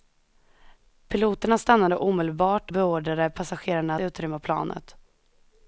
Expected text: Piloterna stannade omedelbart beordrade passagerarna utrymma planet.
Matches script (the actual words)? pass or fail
pass